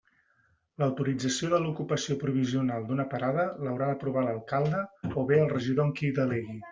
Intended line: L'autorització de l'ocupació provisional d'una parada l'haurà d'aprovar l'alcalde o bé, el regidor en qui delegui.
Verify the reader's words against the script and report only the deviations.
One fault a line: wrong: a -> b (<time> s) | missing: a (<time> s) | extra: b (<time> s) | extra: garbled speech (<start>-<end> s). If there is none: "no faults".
no faults